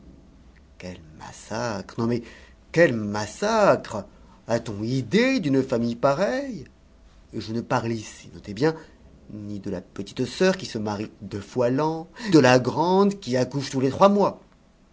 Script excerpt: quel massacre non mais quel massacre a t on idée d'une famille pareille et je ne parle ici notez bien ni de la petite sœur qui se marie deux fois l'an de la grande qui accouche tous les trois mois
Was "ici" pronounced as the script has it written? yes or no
yes